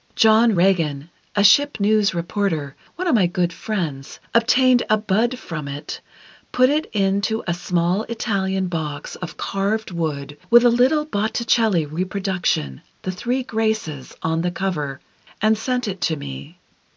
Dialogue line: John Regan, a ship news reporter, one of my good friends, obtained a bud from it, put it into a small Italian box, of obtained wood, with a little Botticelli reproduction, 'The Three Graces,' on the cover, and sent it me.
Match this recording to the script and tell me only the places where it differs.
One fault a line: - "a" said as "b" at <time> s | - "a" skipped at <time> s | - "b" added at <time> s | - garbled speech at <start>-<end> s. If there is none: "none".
- "obtained" said as "carved" at 9.3 s
- "to" added at 16.0 s